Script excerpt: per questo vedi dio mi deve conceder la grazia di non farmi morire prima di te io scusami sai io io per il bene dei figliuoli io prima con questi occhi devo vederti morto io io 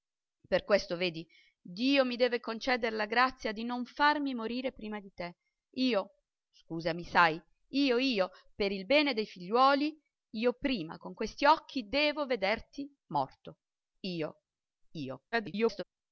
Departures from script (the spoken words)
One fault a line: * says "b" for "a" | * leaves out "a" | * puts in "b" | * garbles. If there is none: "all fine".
* garbles